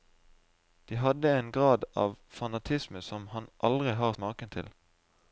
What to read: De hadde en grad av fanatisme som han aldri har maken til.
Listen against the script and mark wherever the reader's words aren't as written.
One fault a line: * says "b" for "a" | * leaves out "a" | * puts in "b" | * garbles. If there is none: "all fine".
all fine